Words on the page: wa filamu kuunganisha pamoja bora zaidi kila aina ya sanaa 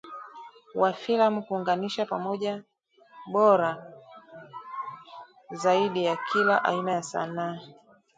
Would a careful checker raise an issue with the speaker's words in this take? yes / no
yes